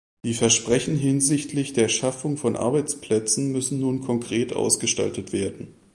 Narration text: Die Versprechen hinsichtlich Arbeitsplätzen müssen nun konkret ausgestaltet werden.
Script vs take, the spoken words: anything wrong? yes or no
yes